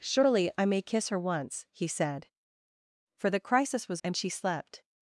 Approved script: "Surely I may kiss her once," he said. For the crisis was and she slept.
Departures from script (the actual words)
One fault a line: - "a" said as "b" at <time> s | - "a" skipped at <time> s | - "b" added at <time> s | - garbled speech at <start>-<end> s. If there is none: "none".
none